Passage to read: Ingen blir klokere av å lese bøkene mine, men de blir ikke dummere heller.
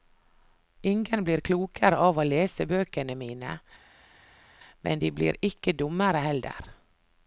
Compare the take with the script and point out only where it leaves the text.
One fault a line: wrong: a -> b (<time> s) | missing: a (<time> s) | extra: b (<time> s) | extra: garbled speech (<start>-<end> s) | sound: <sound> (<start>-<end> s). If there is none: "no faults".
no faults